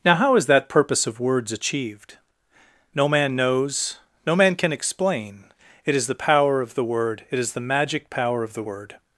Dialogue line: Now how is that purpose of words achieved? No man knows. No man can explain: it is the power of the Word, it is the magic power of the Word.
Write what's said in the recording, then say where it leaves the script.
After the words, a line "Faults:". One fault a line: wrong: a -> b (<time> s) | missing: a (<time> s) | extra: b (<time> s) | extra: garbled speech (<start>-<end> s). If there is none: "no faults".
Now how is that purpose of words achieved? No man knows. No man can explain: it is the power of the Word, it is the magic power of the Word.
Faults:
no faults